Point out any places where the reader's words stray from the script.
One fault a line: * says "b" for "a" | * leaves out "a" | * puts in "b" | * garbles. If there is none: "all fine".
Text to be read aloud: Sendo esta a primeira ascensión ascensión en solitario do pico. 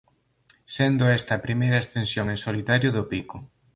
* leaves out "ascensión"